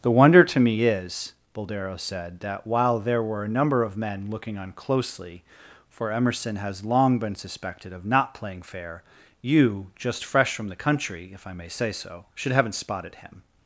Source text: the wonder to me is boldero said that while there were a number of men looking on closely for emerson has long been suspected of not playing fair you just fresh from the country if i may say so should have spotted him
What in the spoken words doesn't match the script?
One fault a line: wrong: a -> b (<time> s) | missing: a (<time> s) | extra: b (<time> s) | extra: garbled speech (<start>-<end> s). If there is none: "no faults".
wrong: have -> haven't (12.5 s)